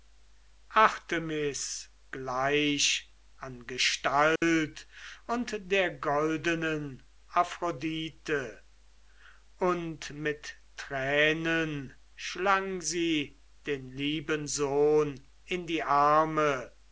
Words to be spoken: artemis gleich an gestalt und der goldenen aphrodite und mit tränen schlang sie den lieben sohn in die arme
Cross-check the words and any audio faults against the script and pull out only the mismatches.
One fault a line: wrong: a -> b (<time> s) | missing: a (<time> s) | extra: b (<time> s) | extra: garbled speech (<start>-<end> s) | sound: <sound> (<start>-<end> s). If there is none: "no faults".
sound: dropout (4.4-4.4 s)